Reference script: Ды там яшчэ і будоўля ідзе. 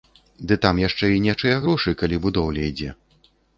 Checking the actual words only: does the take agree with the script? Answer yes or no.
no